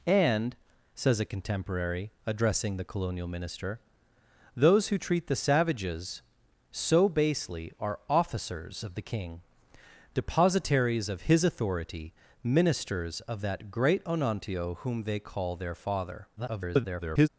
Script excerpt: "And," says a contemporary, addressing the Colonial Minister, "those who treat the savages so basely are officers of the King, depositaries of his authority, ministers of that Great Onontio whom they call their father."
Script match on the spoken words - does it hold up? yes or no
no